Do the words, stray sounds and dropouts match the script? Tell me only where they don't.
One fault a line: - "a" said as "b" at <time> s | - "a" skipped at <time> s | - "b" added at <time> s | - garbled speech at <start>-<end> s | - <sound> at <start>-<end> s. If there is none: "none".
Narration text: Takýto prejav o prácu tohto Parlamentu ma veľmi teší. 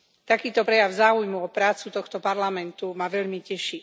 - "záujmu" added at 0.9 s